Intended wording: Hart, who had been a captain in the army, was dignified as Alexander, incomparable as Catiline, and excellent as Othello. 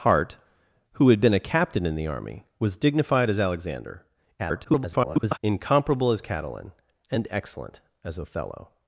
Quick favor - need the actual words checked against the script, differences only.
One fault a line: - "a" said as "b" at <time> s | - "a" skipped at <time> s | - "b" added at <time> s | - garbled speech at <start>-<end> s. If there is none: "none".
- garbled speech at 4.4-5.4 s